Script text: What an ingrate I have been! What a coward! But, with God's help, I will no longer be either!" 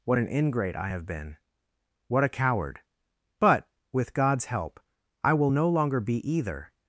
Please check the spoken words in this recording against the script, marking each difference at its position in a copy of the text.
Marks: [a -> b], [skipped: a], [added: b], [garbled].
What an ingrate I have been! What a coward! But, with God's help, I will no longer be either!"